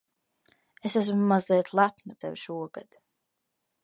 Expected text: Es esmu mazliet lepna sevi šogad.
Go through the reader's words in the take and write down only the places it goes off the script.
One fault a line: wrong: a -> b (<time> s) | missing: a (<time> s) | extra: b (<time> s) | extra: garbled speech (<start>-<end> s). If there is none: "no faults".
no faults